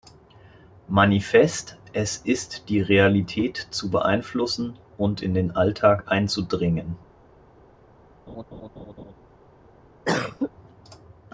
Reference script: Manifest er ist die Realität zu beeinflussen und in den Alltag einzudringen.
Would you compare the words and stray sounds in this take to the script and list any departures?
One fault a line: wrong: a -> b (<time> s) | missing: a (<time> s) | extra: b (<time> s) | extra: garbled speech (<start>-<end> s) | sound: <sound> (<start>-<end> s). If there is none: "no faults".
wrong: er -> es (1.9 s)
sound: laugh (8.3-9.1 s)
sound: cough (10.1-10.5 s)